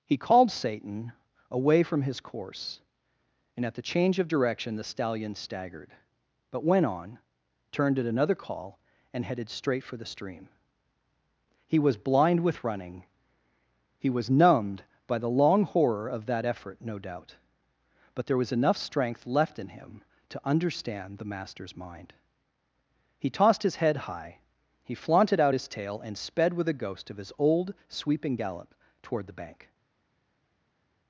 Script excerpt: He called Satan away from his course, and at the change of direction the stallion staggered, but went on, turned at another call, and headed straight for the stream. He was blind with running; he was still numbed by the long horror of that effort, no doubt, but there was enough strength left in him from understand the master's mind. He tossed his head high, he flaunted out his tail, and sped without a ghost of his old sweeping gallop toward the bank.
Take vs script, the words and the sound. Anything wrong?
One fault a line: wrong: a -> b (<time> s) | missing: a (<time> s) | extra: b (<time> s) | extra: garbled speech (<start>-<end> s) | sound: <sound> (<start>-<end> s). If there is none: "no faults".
missing: still (14.3 s)
wrong: from -> to (20.3 s)
wrong: without -> with (26.5 s)